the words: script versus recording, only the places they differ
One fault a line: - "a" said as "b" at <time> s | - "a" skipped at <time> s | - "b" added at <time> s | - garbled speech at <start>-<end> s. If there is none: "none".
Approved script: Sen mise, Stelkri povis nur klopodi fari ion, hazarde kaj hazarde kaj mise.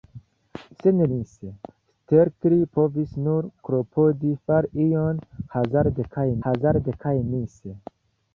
none